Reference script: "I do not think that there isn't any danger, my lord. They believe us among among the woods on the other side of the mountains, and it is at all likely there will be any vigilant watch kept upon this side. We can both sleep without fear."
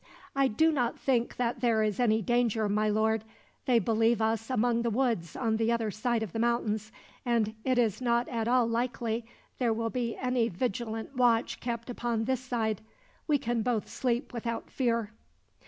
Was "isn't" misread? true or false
true